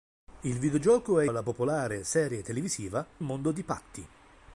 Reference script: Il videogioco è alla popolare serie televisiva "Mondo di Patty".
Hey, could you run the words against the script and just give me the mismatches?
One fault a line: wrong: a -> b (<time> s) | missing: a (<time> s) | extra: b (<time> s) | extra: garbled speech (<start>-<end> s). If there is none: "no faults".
no faults